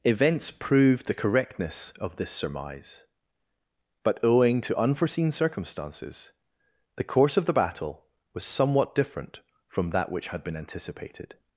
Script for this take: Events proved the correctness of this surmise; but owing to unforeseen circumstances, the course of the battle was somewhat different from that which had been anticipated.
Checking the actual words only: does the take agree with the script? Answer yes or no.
yes